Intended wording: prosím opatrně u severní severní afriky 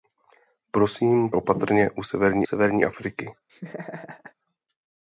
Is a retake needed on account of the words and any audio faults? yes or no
yes